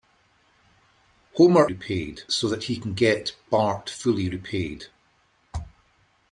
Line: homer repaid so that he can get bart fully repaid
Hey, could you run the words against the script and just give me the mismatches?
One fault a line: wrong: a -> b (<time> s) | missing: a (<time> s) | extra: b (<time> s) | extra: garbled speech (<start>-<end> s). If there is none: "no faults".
no faults